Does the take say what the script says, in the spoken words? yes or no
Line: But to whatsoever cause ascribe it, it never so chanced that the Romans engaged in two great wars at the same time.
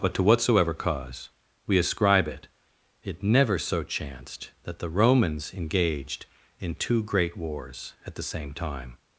no